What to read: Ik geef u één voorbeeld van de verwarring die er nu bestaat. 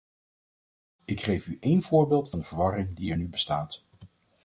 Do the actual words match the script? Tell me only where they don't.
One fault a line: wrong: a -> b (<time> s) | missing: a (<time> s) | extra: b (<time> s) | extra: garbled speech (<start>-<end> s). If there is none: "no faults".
no faults